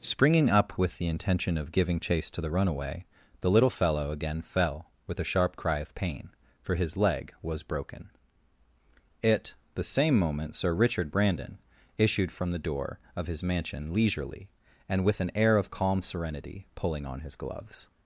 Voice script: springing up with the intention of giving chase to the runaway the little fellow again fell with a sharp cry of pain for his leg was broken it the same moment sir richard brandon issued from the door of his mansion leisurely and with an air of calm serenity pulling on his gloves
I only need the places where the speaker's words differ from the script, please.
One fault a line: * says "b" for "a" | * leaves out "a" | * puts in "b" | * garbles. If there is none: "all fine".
all fine